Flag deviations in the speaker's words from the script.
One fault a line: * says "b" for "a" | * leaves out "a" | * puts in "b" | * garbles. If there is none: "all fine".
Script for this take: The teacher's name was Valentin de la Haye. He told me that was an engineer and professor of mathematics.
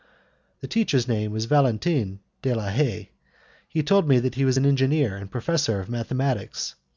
* puts in "he"